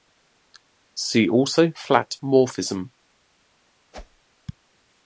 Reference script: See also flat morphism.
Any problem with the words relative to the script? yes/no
no